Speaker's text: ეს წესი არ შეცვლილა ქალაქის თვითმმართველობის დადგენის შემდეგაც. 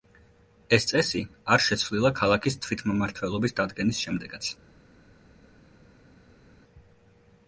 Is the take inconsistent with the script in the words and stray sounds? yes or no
no